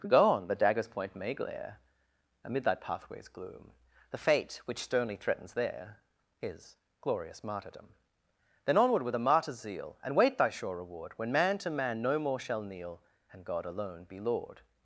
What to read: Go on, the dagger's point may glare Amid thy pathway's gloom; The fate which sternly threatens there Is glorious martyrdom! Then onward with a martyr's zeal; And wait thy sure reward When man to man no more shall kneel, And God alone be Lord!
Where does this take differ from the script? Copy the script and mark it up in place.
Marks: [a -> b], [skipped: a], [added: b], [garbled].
Go on, the dagger's point may glare Amid thy pathway's gloom; The fate which sternly threatens there Is glorious martyrdom! Then onward with a martyr's zeal; And wait thy sure reward When man to man no more shall kneel, And God alone be Lord!